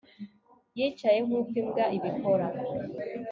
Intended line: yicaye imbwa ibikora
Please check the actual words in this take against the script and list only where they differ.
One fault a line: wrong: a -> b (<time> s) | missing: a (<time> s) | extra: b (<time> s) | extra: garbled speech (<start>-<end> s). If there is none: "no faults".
extra: nkuko (1.2 s)